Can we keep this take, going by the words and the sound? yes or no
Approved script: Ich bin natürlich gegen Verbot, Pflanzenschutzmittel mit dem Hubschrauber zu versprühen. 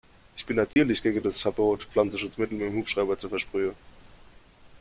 no